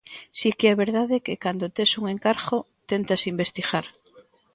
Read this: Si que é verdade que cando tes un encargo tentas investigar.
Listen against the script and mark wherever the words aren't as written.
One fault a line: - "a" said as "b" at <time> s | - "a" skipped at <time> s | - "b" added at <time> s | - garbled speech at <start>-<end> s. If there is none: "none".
none